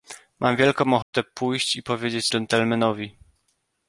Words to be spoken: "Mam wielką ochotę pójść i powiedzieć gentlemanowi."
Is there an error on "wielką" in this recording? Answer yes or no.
no